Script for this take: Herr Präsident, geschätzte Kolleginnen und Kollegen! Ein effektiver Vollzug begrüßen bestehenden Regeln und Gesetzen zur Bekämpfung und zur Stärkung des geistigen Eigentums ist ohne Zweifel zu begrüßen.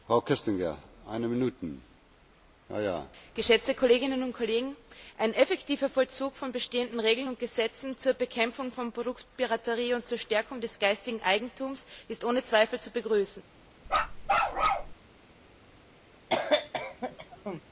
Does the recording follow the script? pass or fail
fail